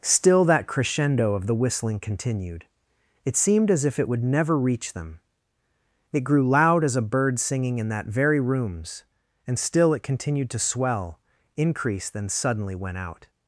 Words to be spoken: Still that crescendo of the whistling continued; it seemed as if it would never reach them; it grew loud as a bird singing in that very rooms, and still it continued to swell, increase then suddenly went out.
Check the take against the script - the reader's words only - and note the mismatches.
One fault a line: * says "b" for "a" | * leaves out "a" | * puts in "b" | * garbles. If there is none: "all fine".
all fine